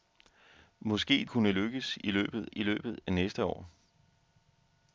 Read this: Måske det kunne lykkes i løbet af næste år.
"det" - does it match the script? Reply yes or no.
no